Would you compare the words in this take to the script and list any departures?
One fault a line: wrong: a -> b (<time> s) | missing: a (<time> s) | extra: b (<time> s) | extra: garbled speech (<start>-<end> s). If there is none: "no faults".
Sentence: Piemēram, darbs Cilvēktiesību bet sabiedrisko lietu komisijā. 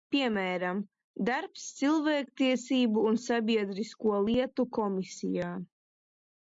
wrong: bet -> un (3.1 s)